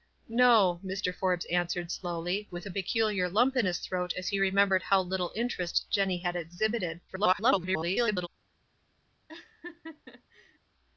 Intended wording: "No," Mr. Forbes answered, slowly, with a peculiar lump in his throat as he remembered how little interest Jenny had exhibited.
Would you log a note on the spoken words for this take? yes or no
yes